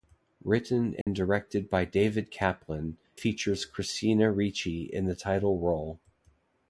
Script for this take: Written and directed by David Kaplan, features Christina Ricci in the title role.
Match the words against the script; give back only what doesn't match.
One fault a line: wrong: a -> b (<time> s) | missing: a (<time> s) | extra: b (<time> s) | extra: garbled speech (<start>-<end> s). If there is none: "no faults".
no faults